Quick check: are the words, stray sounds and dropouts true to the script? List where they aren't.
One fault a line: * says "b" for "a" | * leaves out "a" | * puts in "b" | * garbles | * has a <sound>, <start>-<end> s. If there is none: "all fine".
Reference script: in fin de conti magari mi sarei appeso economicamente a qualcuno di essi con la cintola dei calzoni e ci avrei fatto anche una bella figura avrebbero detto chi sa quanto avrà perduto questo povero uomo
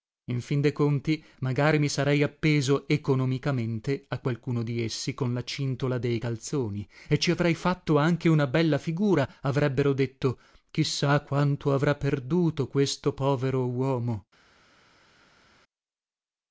all fine